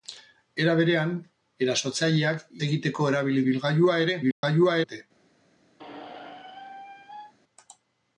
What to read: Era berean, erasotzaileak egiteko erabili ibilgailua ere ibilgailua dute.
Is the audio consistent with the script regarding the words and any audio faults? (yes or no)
no